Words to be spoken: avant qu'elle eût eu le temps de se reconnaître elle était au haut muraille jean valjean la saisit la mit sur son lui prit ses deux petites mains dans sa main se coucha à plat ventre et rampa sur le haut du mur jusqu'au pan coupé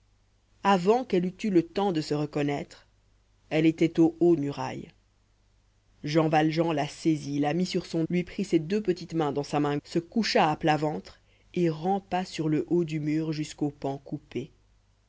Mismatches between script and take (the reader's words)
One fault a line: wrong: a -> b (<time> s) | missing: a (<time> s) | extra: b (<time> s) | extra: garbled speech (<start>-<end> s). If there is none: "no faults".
no faults